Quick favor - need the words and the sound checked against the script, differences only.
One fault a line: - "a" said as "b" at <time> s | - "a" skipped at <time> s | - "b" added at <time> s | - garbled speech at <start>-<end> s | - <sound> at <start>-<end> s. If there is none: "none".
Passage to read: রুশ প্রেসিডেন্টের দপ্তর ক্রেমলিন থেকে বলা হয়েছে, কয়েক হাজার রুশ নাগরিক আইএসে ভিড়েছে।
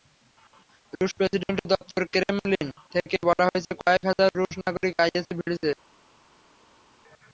none